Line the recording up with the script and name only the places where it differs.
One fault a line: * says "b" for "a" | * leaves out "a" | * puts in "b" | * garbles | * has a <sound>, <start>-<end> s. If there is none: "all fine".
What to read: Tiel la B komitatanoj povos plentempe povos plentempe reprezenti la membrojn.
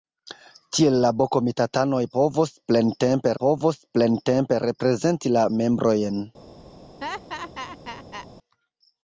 * has a laugh, 7.0-8.3 s